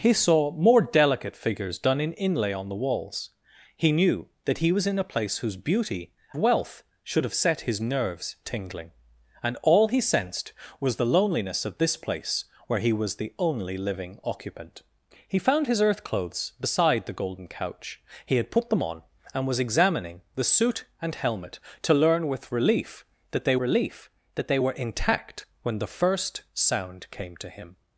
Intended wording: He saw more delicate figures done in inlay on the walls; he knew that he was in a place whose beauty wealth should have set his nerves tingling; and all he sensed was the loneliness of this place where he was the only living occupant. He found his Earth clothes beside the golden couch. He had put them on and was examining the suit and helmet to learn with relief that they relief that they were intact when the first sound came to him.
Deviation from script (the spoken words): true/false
false